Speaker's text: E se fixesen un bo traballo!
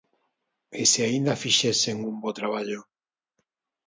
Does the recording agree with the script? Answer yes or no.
no